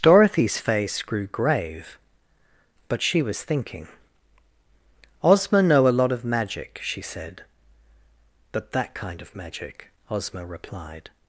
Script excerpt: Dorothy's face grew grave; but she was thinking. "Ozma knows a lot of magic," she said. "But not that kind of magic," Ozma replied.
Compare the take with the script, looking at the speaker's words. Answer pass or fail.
fail